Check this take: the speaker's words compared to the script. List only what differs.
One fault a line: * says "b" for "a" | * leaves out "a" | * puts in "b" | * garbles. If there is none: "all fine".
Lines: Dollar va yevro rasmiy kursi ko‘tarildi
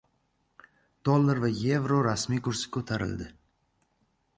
all fine